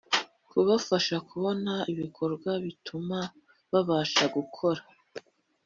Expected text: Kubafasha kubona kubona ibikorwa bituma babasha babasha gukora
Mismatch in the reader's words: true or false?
true